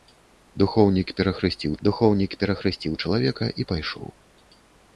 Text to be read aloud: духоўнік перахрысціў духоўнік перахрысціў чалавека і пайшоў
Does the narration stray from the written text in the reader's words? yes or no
no